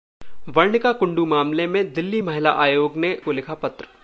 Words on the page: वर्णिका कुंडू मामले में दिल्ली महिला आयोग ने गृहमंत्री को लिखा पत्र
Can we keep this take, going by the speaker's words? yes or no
no